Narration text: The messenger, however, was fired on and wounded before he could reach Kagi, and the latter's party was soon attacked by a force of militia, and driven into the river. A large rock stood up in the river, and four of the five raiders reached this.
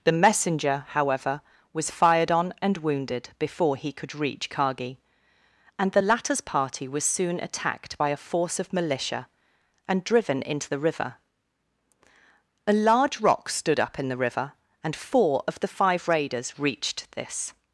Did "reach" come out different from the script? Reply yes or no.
no